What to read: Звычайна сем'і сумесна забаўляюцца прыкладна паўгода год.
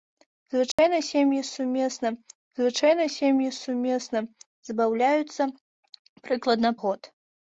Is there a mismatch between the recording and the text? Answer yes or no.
yes